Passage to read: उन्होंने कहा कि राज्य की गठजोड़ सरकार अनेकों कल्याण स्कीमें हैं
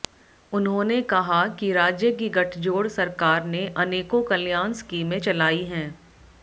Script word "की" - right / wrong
right